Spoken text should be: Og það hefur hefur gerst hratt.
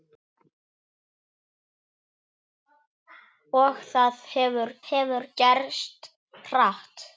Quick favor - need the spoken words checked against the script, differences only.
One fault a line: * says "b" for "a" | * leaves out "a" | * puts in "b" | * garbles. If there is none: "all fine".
all fine